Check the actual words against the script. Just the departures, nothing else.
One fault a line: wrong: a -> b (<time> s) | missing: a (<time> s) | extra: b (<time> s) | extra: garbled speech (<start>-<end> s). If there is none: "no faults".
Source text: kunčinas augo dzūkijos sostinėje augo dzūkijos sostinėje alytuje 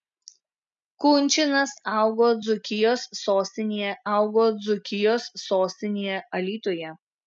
no faults